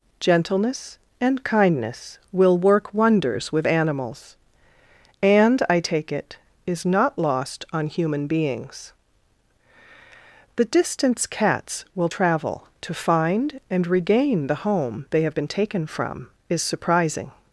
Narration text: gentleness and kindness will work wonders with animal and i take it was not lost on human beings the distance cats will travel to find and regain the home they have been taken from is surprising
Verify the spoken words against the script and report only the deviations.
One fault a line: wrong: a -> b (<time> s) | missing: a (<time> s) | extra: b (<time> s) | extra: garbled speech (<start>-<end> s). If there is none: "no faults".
wrong: animal -> animals (3.7 s)
wrong: was -> is (6.7 s)